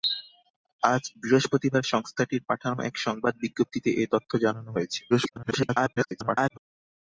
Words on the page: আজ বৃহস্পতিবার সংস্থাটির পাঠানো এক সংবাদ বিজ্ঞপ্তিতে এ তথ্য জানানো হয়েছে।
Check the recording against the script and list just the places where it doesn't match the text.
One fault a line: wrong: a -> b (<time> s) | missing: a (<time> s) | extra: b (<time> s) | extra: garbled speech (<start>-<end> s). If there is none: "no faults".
extra: garbled speech (5.1-6.6 s)